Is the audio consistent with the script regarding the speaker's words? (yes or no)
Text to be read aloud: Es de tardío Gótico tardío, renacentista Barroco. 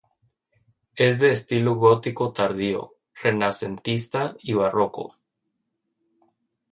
no